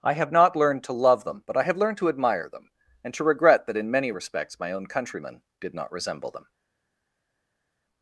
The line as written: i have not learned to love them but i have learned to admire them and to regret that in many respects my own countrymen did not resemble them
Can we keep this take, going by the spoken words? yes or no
yes